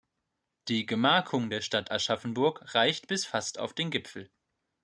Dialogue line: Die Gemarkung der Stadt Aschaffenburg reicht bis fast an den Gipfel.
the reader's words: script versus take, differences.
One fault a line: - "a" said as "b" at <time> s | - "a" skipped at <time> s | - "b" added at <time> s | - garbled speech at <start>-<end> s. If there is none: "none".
- "an" said as "auf" at 3.6 s